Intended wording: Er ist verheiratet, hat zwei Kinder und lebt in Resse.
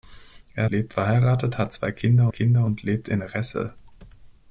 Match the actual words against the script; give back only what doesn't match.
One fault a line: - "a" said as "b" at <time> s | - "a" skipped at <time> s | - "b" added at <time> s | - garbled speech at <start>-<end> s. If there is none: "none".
- "ist" said as "lebt" at 0.7 s
- "Kinder" added at 2.3 s